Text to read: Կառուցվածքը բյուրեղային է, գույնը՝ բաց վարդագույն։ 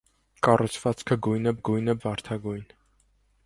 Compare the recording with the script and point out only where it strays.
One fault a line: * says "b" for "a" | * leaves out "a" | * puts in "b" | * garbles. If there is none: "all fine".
* says "գույնը" for "բյուրեղային"
* leaves out "բաց"